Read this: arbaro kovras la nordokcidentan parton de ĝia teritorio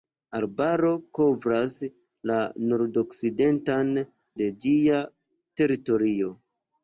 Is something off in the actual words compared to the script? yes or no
yes